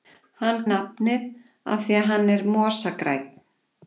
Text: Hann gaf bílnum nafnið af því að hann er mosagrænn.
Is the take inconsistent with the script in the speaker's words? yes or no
yes